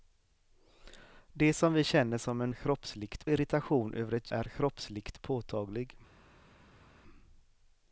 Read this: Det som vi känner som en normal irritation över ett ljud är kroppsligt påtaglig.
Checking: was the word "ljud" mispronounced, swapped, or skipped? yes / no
yes